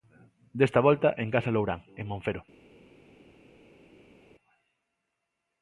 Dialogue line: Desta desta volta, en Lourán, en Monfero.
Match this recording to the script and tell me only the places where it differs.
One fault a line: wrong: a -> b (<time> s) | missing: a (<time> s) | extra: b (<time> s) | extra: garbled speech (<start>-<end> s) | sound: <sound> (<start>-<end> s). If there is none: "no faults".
missing: desta (0.8 s)
extra: Casa (1.4 s)